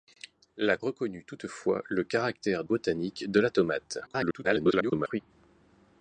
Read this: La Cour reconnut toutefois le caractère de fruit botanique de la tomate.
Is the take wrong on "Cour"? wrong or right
wrong